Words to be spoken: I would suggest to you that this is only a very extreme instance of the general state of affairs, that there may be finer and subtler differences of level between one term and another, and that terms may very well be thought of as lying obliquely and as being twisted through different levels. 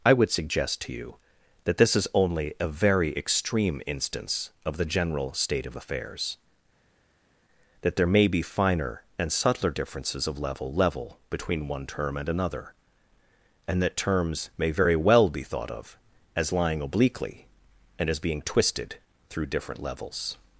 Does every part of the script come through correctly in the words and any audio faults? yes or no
no